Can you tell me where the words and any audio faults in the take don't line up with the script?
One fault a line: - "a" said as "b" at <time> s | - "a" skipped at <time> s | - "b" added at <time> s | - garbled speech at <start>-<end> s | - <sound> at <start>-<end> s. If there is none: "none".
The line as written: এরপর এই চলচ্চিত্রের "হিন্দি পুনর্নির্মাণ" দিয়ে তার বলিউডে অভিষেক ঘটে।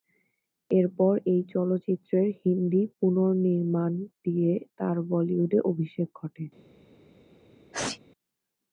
- sneeze at 7.7-8.0 s